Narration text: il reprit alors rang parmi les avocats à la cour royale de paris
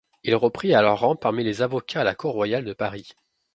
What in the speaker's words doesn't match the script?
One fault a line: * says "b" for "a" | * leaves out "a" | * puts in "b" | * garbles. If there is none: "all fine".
all fine